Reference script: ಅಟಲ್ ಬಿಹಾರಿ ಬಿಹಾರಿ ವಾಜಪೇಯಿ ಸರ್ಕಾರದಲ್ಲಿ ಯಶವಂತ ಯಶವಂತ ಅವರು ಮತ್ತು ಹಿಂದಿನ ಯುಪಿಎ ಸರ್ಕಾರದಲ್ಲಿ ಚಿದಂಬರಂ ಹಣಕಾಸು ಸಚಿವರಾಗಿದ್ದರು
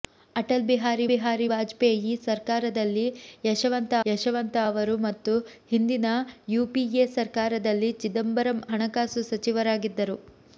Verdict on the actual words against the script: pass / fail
pass